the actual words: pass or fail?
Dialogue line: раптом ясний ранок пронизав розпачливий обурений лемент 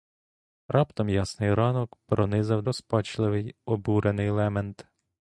pass